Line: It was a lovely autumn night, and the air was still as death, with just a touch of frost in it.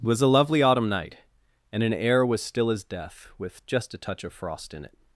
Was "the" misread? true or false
true